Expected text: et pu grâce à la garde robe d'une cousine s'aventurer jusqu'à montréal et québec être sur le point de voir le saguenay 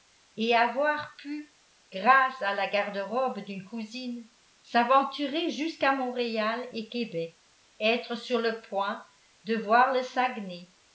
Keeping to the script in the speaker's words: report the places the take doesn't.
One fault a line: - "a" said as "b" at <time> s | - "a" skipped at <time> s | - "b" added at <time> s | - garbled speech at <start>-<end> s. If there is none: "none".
- "avoir" added at 0.6 s